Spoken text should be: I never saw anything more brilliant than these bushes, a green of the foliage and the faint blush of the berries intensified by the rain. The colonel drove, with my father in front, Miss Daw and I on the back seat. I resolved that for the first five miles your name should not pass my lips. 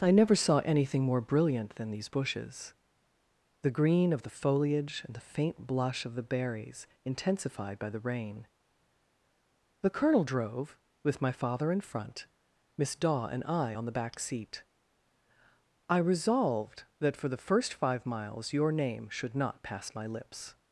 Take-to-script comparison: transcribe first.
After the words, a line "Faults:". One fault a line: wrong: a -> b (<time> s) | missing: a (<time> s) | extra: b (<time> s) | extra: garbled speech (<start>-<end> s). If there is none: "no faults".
I never saw anything more brilliant than these bushes, the green of the foliage and the faint blush of the berries intensified by the rain. The colonel drove, with my father in front, Miss Daw and I on the back seat. I resolved that for the first five miles your name should not pass my lips.
Faults:
wrong: a -> the (3.6 s)